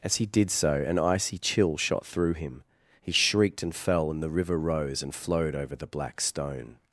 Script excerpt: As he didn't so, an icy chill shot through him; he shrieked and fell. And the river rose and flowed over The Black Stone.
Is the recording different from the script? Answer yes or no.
yes